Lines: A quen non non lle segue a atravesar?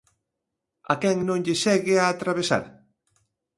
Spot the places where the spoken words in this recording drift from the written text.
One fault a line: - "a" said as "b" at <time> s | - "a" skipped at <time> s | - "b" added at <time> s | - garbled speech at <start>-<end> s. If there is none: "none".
- "non" skipped at 1.4 s